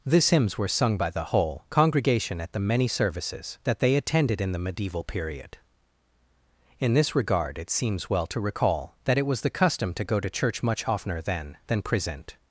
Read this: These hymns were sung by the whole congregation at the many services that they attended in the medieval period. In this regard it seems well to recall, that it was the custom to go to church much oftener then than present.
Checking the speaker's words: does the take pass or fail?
pass